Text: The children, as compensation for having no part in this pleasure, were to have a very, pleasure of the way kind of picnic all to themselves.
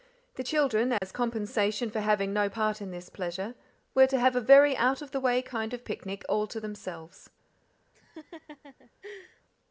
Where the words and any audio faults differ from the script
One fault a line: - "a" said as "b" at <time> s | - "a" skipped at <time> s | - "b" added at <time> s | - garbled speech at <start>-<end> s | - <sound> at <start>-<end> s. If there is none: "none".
- dropout at 1.0-1.0 s
- "pleasure" said as "out" at 4.8 s
- laugh at 7.9-9.4 s